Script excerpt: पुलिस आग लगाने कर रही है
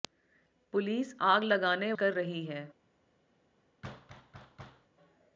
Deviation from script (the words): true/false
false